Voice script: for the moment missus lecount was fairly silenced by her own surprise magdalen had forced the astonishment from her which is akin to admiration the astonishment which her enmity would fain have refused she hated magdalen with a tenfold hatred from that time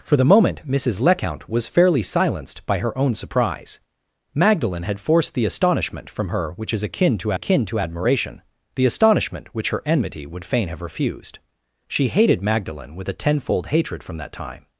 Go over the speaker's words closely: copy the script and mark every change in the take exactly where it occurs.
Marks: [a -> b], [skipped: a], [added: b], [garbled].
for the moment missus lecount was fairly silenced by her own surprise magdalen had forced the astonishment from her which is akin to [added: akin to] admiration the astonishment which her enmity would fain have refused she hated magdalen with a tenfold hatred from that time